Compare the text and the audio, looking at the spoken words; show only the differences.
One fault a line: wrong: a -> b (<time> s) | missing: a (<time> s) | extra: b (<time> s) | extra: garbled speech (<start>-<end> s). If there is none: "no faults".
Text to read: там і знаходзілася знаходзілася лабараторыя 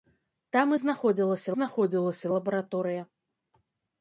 no faults